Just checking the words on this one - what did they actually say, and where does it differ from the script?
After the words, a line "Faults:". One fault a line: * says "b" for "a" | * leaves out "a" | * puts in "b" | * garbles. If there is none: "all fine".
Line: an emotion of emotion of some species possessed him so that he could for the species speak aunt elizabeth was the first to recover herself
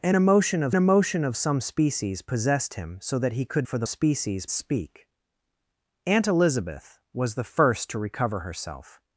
an emotion of emotion of some species possessed him so that he could for the species speak aunt elizabeth was the first to recover herself
Faults:
all fine